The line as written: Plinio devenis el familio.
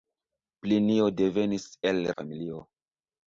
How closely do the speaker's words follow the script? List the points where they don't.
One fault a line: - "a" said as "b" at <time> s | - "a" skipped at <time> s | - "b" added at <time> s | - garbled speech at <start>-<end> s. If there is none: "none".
none